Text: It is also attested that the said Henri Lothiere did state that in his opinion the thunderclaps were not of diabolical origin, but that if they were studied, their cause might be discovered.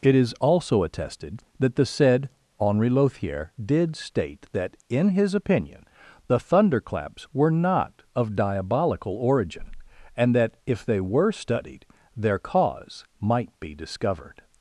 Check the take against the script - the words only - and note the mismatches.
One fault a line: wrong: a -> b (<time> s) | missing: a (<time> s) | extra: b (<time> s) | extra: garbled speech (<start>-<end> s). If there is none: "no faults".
wrong: but -> and (10.1 s)